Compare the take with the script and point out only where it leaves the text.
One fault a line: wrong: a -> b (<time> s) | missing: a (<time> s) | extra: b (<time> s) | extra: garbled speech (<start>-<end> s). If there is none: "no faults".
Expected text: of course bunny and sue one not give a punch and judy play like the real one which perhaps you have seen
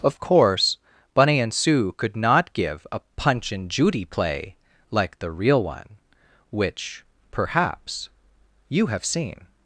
wrong: one -> could (2.0 s)